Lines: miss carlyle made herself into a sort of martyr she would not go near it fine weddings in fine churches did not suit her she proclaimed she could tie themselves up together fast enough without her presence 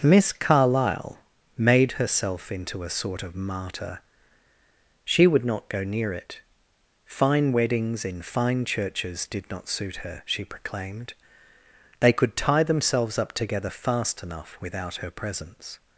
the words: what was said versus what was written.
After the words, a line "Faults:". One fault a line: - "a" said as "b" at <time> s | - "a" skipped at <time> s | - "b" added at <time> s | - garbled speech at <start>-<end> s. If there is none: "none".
miss carlyle made herself into a sort of martyr she would not go near it fine weddings in fine churches did not suit her she proclaimed they could tie themselves up together fast enough without her presence
Faults:
- "she" said as "they" at 12.0 s